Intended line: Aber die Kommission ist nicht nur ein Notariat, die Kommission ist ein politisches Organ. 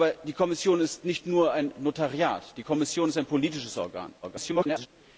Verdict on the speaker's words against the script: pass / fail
fail